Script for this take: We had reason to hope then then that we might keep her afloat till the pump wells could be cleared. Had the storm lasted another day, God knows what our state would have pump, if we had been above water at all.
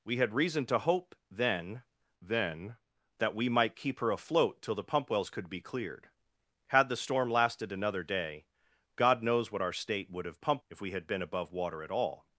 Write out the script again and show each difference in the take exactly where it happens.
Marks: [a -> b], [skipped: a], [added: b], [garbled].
We had reason to hope then then that we might keep her afloat till the pump wells could be cleared. Had the storm lasted another day, God knows what our state would have pump, if we had been above water at all.